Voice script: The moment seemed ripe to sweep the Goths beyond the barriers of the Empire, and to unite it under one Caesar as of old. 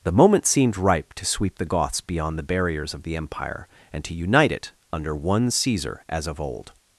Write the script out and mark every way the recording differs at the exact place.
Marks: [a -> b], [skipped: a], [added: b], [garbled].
The moment seemed ripe to sweep the Goths beyond the barriers of the Empire, and to unite it under one Caesar as of old.